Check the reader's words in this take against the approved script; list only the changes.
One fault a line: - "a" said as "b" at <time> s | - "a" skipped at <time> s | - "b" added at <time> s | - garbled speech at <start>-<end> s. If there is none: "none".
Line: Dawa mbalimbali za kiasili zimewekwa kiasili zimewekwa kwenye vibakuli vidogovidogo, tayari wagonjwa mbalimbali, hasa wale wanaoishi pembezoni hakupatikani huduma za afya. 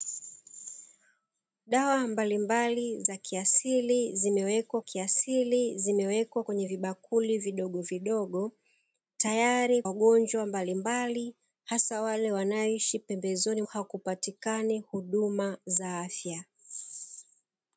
none